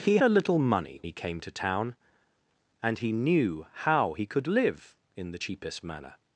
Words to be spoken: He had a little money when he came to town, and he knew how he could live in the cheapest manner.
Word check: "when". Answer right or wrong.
wrong